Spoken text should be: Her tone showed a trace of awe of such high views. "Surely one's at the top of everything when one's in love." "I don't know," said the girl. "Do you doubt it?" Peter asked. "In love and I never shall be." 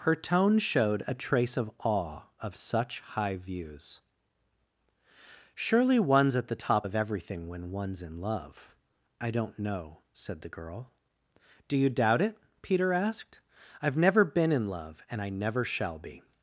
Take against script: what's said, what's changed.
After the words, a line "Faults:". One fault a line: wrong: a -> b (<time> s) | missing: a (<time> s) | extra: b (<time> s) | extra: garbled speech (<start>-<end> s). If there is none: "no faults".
Her tone showed a trace of awe of such high views. "Surely one's at the top of everything when one's in love." "I don't know," said the girl. "Do you doubt it?" Peter asked. "I've never been in love and I never shall be."
Faults:
extra: I've never been (13.8 s)